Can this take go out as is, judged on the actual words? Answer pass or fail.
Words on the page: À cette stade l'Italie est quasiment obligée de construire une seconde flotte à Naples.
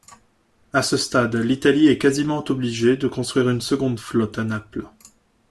fail